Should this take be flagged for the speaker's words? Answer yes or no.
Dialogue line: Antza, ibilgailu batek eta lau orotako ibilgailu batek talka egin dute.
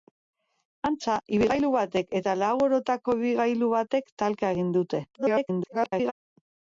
yes